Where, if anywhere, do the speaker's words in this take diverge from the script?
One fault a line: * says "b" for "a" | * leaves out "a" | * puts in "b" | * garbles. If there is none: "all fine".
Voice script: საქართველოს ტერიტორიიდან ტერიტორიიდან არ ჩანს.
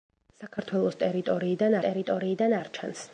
all fine